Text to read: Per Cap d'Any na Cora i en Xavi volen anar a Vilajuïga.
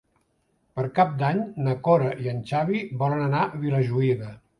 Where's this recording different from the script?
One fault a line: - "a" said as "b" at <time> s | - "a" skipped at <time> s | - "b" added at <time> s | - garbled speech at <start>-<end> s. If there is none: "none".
none